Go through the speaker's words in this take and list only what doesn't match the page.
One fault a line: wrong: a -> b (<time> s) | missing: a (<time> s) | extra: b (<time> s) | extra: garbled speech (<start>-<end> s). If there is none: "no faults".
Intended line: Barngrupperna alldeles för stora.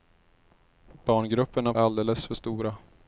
no faults